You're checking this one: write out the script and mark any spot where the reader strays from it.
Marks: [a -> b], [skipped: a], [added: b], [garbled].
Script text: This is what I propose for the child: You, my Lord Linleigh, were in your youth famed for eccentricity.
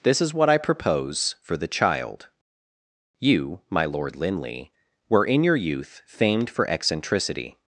This is what I propose for the child: You, my Lord Linleigh, were in your youth famed for eccentricity.